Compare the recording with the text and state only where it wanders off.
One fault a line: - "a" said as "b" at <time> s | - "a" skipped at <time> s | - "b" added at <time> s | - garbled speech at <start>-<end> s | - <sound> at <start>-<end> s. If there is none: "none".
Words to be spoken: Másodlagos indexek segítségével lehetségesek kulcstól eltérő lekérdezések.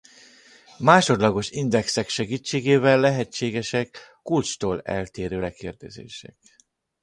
none